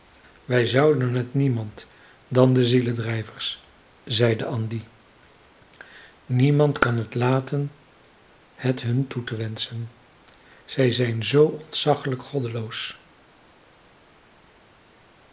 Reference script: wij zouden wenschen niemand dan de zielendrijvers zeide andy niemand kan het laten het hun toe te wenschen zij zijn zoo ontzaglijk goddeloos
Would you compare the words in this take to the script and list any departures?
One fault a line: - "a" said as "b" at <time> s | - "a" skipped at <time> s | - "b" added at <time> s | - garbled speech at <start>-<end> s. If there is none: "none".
- "wenschen" said as "het" at 1.1 s